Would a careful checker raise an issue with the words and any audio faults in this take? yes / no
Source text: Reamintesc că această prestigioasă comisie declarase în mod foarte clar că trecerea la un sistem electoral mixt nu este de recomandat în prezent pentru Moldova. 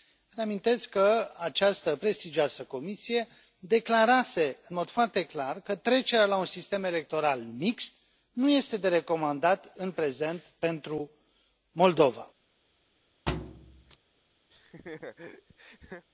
yes